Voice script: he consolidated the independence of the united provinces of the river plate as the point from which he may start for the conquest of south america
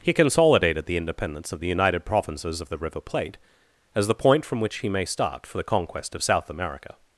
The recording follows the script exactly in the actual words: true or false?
true